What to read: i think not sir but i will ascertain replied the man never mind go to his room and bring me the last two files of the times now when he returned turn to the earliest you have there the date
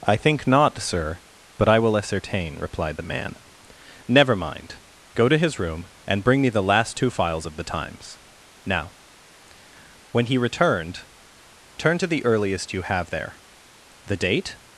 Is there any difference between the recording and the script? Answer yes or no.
no